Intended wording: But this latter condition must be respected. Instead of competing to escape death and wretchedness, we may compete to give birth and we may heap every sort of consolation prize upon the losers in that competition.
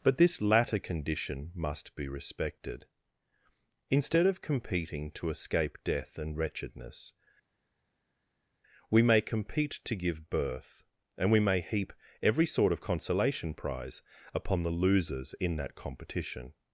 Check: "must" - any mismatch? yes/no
no